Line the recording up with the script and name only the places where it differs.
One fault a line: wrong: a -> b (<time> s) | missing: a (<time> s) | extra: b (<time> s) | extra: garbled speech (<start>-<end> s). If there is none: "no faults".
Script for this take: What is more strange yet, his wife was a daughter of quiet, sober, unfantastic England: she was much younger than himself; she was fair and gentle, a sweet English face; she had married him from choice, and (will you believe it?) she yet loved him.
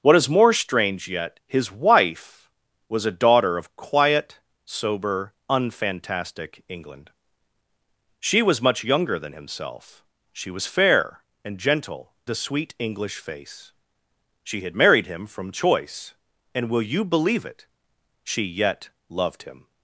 no faults